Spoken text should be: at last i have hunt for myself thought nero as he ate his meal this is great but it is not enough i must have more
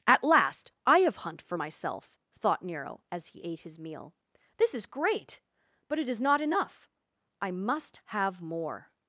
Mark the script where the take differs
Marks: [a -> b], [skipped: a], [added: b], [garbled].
at last i have hunt for myself thought nero as he ate his meal this is great but it is not enough i must have more